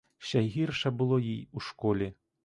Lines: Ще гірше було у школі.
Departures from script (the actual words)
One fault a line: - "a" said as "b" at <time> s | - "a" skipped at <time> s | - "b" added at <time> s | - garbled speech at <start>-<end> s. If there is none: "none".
- "їй" added at 1.2 s